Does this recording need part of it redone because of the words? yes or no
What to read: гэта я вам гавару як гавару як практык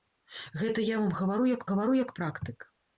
no